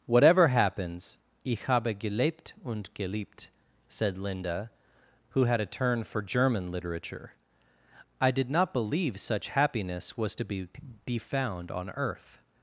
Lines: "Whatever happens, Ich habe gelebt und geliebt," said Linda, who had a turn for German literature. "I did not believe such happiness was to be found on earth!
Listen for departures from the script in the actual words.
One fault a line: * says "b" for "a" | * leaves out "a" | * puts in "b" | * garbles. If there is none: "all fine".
* puts in "be"